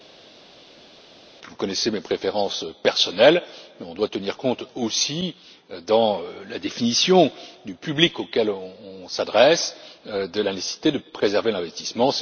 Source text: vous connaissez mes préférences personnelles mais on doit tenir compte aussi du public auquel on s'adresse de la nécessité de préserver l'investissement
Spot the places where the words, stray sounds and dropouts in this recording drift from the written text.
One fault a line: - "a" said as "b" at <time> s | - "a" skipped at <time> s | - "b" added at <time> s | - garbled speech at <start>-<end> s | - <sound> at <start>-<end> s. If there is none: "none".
- "dans la définition" added at 5.9 s